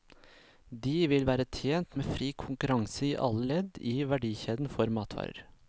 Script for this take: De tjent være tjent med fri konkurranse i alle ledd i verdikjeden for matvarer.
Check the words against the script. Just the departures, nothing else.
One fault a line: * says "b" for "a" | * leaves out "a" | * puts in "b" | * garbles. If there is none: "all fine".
* says "vil" for "tjent"